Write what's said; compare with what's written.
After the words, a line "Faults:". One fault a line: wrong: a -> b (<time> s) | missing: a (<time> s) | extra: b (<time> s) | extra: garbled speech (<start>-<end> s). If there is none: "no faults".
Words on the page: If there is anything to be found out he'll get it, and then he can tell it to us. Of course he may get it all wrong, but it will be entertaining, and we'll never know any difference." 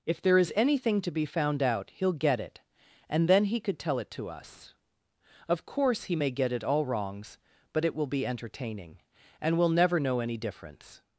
If there is anything to be found out he'll get it, and then he could tell it to us. Of course he may get it all wrongs, but it will be entertaining, and we'll never know any difference."
Faults:
wrong: can -> could (3.6 s)
wrong: wrong -> wrongs (6.9 s)